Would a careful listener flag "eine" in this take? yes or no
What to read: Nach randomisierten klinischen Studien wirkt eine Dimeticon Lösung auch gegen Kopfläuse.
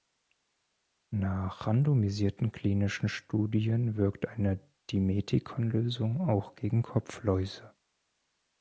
no